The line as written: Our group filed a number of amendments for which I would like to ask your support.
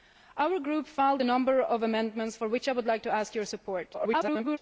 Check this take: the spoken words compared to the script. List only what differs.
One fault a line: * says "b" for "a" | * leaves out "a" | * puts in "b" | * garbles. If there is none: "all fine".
* garbles